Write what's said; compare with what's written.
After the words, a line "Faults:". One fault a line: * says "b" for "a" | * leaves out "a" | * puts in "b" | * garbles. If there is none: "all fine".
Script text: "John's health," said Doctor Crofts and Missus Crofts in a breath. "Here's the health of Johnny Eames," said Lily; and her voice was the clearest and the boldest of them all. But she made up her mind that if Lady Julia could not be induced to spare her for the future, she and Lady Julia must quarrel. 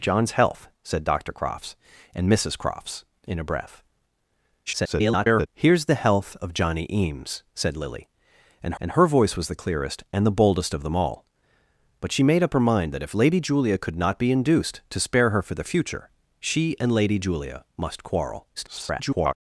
"John's health," said Doctor Crofts and Missus Crofts in a breath. [garbled] "Here's the health of Johnny Eames," said Lily; and and her voice was the clearest and the boldest of them all. But she made up her mind that if Lady Julia could not be induced to spare her for the future, she and Lady Julia must quarrel. [garbled]
Faults:
* garbles
* puts in "and"
* garbles